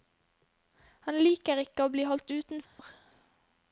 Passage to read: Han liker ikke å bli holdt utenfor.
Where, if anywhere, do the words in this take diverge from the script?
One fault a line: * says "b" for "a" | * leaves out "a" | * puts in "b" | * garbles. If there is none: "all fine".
all fine